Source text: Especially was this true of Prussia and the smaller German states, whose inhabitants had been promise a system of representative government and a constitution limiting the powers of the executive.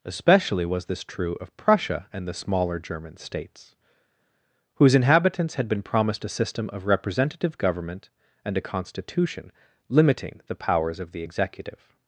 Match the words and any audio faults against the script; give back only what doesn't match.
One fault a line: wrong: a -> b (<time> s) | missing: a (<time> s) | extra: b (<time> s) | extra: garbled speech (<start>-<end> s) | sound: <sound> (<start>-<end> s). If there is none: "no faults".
wrong: promise -> promised (5.8 s)